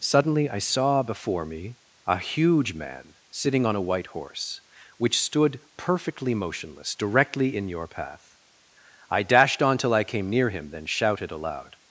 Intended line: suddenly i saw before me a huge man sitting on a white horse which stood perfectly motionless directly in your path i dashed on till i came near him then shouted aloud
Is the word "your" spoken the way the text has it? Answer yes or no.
yes